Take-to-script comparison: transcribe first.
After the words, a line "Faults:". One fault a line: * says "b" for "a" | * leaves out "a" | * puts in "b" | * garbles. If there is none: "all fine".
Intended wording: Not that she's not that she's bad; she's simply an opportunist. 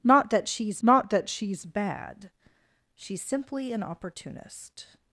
Not that she's not that she's bad; she's simply an opportunist.
Faults:
all fine